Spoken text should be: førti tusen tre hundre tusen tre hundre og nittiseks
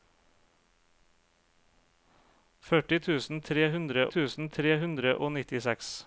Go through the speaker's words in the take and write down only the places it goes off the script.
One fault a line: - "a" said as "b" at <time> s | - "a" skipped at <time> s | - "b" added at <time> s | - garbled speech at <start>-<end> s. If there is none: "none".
none